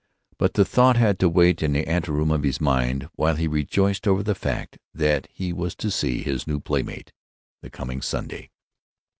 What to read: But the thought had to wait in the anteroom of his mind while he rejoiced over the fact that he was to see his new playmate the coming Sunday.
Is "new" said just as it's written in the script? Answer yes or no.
yes